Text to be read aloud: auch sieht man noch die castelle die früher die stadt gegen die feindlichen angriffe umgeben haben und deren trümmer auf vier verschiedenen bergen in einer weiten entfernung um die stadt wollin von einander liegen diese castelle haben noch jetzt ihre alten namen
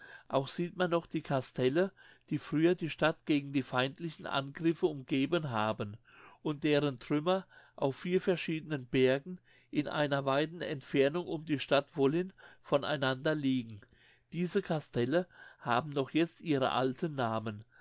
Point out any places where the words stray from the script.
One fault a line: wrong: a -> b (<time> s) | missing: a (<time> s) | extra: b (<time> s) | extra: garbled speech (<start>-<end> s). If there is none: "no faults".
no faults